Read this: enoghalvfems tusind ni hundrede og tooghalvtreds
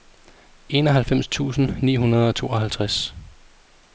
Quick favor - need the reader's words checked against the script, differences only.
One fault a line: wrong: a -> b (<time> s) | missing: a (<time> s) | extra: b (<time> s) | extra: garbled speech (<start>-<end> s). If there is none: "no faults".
no faults